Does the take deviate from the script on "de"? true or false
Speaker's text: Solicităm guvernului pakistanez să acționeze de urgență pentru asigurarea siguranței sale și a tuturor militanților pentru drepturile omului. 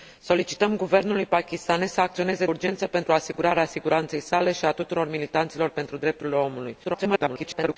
true